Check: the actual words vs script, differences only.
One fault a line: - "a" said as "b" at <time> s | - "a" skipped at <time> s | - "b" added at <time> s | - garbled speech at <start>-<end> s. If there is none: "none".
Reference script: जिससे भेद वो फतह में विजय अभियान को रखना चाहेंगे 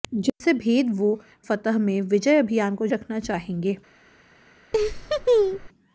none